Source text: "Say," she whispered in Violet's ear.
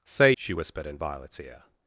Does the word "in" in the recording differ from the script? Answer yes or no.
no